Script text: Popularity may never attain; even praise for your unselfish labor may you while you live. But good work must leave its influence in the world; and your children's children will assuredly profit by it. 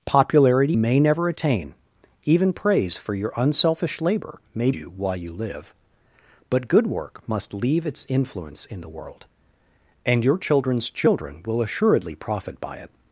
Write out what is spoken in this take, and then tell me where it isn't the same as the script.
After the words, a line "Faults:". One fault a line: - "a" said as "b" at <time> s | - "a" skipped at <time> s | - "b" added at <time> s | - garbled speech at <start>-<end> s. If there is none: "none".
Popularity may never attain; even praise for your unselfish labor may you while you live. But good work must leave its influence in the world; and your children's children will assuredly profit by it.
Faults:
none